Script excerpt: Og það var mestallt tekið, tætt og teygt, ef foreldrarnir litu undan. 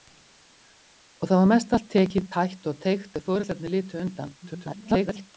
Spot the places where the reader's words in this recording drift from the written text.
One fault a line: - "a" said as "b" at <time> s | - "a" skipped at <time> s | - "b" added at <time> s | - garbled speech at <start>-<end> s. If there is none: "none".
- garbled speech at 4.4-5.3 s